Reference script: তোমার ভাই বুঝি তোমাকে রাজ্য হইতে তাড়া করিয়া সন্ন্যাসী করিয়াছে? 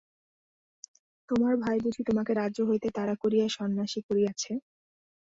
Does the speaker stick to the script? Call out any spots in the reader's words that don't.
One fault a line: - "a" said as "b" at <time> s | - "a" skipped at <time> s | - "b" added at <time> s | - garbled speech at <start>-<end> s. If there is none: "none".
none